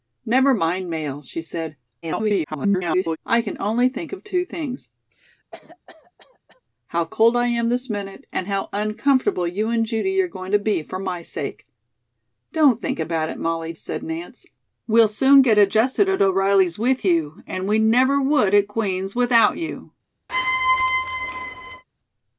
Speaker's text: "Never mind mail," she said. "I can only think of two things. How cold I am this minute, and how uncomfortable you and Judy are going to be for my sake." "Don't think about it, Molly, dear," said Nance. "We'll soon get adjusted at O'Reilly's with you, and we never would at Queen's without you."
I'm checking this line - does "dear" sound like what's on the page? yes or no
no